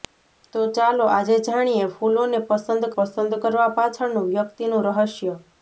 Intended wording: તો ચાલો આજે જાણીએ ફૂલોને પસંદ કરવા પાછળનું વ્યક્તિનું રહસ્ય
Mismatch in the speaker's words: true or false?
true